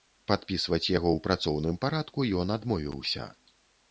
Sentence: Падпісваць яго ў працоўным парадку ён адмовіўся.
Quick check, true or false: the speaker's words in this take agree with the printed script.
true